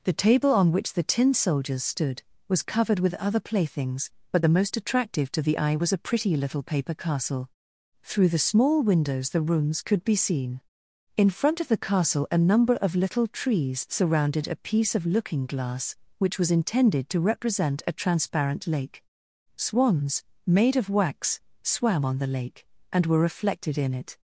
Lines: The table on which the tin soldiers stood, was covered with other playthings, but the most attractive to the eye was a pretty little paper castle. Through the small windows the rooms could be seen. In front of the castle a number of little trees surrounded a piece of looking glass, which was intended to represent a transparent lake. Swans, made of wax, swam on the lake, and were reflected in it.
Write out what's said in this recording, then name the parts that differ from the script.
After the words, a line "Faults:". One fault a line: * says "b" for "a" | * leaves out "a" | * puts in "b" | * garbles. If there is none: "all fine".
The table on which the tin soldiers stood, was covered with other playthings, but the most attractive to the eye was a pretty little paper castle. Through the small windows the rooms could be seen. In front of the castle a number of little trees surrounded a piece of looking glass, which was intended to represent a transparent lake. Swans, made of wax, swam on the lake, and were reflected in it.
Faults:
all fine